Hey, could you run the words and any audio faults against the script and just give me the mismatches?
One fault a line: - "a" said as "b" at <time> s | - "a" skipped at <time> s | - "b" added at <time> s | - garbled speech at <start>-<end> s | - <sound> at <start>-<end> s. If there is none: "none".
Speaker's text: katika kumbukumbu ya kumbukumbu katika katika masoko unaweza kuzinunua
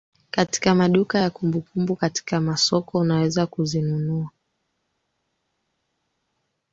- "kumbukumbu" said as "maduka" at 0.8 s
- "katika" skipped at 2.4 s